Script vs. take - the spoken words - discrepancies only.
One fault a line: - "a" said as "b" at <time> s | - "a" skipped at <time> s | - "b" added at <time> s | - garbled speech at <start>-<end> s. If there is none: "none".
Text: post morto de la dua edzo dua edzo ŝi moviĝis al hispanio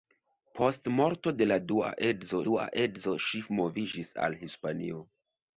none